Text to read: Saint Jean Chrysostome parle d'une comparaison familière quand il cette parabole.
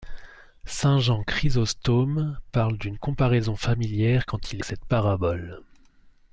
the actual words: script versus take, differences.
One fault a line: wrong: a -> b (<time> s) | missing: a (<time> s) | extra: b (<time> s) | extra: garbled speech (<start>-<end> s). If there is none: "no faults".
no faults